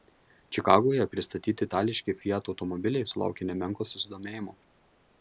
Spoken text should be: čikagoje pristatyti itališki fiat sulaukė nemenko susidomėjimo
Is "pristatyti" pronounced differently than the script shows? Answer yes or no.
no